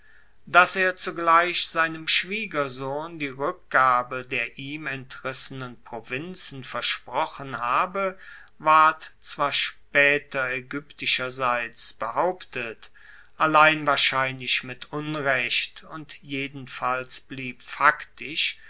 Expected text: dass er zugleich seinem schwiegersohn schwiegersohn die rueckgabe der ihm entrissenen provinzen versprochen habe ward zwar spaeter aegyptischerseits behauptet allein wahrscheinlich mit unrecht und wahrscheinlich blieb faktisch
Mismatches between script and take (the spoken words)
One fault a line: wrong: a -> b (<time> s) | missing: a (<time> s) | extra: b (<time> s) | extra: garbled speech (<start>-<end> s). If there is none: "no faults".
missing: schwiegersohn (3.2 s)
wrong: wahrscheinlich -> jedenfalls (16.2 s)